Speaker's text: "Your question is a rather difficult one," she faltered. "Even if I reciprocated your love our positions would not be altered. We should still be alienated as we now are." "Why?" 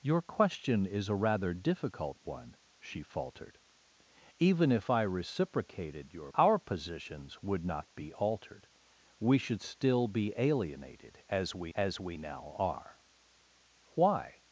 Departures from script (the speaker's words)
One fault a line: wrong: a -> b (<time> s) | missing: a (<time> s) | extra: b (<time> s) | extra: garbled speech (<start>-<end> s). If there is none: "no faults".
missing: love (6.3 s)
extra: as we (11.8 s)